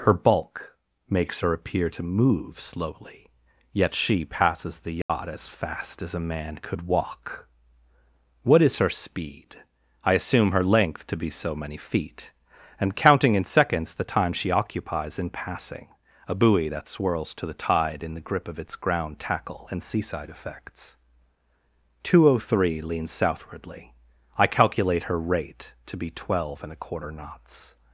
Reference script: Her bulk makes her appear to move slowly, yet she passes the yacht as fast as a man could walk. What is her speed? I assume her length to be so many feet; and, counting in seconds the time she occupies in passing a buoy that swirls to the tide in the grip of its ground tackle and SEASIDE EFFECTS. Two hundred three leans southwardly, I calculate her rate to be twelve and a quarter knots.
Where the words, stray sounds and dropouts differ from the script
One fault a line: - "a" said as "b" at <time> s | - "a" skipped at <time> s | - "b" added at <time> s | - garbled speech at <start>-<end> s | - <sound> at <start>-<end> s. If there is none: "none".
- dropout at 5.0-5.1 s